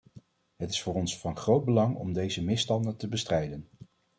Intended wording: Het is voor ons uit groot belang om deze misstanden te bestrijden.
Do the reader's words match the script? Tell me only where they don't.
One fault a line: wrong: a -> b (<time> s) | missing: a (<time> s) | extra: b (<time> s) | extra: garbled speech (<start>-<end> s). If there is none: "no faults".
wrong: uit -> van (1.2 s)